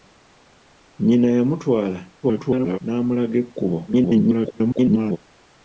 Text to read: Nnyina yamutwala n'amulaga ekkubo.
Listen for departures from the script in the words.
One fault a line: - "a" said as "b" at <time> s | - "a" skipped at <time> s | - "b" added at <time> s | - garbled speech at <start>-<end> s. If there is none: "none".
- garbled speech at 2.2-2.8 s
- garbled speech at 3.9-5.2 s